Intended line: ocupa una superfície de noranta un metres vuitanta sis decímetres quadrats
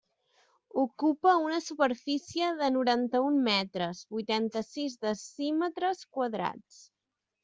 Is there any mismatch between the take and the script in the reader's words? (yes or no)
no